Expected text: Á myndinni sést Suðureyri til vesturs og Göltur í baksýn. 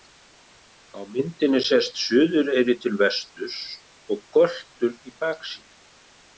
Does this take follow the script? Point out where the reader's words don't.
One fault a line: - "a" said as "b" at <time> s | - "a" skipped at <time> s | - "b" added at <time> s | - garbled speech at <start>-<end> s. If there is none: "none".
none